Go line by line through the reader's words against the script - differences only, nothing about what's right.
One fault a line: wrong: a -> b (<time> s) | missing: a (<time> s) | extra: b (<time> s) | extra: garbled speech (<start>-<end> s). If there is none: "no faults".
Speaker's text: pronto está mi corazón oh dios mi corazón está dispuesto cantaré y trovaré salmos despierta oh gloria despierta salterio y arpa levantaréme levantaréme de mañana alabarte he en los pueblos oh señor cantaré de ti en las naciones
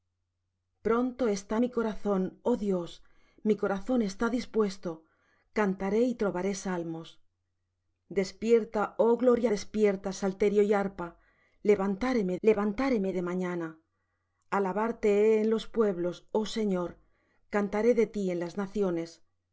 no faults